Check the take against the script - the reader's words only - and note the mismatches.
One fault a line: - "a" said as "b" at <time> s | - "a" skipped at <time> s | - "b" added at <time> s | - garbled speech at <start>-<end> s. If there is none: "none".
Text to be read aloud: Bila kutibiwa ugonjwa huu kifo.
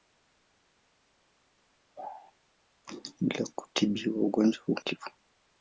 none